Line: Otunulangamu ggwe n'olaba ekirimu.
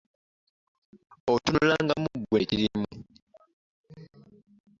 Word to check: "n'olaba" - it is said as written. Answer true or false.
false